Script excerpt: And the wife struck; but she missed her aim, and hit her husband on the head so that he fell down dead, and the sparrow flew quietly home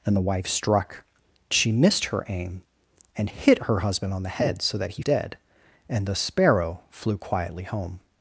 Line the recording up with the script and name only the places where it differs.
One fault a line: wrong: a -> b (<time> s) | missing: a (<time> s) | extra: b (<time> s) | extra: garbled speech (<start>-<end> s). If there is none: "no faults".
missing: but (1.0 s)
missing: fell down (5.0 s)